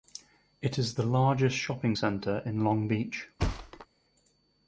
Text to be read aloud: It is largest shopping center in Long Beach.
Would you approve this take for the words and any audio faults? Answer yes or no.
no